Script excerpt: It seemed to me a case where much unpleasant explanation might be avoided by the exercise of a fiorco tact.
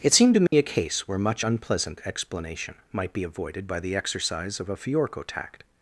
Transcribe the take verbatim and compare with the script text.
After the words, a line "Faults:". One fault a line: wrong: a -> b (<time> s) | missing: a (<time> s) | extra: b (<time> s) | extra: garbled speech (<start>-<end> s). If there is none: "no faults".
It seemed to me a case where much unpleasant explanation might be avoided by the exercise of a fiorco tact.
Faults:
no faults